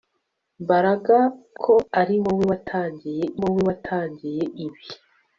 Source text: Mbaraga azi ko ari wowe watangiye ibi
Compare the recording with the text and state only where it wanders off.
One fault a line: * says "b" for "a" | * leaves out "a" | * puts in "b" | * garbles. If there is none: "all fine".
* leaves out "azi"
* puts in "wowe watangiye"